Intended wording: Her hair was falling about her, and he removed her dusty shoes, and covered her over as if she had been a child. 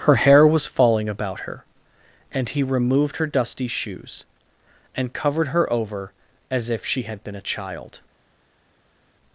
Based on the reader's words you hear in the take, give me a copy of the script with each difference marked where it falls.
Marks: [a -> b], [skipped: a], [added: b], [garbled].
Her hair was falling about her, and he removed her dusty shoes, and covered her over as if she had been a child.